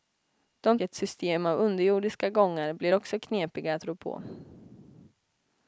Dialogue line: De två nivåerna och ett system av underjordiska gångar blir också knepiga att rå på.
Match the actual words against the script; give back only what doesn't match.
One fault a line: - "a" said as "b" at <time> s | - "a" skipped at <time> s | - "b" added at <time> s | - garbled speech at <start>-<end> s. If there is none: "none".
- "två nivåerna och" skipped at 0.8 s